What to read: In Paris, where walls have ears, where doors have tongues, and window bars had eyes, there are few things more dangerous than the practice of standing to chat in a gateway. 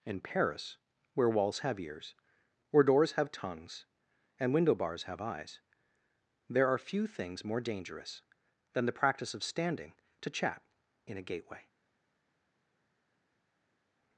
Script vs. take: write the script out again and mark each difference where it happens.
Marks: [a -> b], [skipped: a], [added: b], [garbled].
In Paris, where walls have ears, where doors have tongues, and window bars [had -> have] eyes, there are few things more dangerous than the practice of standing to chat in a gateway.